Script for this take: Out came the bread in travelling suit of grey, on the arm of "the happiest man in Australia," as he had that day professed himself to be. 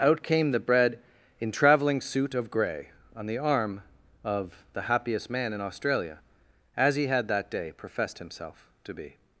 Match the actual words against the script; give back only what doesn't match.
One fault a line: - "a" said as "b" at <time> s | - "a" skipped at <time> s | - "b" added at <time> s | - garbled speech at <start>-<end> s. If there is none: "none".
none